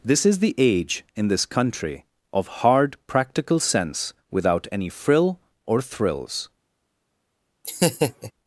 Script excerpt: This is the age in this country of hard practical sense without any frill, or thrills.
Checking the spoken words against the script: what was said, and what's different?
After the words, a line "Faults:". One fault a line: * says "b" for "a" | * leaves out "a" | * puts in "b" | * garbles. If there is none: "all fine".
This is the age in this country of hard practical sense without any frill, or thrills.
Faults:
all fine